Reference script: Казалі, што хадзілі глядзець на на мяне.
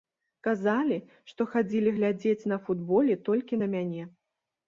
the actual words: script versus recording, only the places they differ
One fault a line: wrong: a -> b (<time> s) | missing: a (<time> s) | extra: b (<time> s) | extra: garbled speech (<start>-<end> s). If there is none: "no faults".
extra: футболе толькі (2.7 s)